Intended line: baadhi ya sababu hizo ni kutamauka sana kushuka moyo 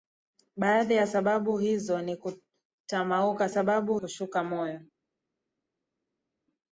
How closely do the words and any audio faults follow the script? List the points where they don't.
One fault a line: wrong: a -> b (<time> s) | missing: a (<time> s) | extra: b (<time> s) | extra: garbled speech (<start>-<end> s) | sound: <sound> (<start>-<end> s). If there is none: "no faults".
wrong: sana -> sababu (3.5 s)